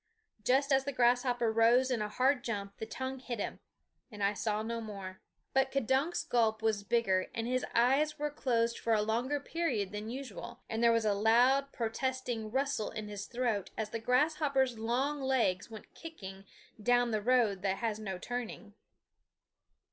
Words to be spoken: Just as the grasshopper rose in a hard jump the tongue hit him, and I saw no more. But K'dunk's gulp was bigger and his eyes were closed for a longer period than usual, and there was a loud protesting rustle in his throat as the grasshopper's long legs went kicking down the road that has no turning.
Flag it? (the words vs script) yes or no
no